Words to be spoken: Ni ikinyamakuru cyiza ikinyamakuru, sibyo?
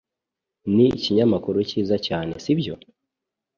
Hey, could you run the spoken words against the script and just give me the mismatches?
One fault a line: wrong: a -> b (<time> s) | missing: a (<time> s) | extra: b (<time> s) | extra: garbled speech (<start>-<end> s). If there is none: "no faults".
wrong: ikinyamakuru -> cyane (2.1 s)